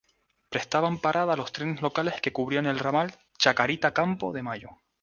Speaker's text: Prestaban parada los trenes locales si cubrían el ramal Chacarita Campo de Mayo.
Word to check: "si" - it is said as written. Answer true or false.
false